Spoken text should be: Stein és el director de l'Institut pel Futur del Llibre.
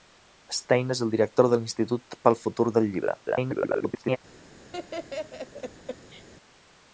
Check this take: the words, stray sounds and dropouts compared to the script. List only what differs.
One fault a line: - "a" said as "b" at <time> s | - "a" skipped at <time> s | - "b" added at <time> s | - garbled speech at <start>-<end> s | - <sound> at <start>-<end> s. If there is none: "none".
- garbled speech at 3.3-4.2 s
- laugh at 4.7-6.3 s